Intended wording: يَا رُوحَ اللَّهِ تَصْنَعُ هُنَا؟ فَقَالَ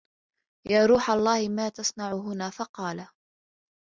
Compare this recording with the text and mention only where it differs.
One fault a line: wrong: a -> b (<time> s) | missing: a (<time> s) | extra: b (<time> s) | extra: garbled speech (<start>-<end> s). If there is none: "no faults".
extra: مَا (1.5 s)